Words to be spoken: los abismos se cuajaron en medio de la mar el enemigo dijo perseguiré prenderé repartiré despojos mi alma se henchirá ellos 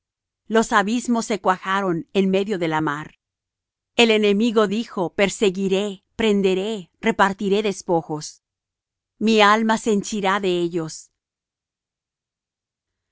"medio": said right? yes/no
yes